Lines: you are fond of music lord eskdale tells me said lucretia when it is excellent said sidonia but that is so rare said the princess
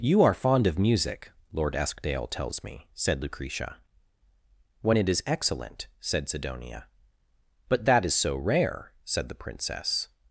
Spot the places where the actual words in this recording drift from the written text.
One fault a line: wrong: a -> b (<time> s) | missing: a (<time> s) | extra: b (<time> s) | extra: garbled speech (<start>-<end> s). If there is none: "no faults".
no faults